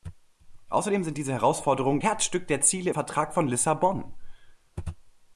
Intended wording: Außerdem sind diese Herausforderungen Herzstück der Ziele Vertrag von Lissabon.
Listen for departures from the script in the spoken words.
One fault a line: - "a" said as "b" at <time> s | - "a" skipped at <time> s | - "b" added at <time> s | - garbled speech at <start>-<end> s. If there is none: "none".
none